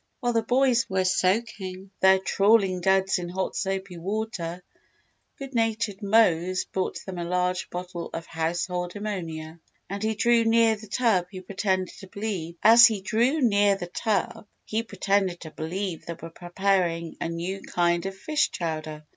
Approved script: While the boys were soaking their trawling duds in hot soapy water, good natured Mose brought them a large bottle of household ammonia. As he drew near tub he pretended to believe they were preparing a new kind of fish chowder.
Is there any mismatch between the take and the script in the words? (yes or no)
yes